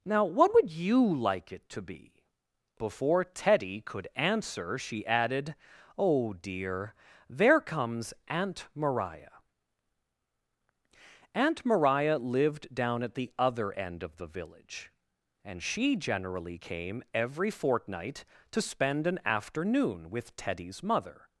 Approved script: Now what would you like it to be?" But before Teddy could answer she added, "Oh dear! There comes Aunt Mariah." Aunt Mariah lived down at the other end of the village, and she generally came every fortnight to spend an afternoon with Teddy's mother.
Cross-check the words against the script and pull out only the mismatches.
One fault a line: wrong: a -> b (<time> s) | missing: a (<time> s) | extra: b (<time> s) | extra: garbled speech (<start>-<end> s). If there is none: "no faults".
missing: But (2.2 s)